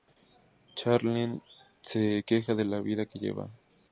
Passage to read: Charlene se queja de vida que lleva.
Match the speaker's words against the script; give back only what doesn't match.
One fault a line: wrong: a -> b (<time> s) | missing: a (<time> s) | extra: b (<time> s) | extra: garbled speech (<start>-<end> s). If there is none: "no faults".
extra: la (2.6 s)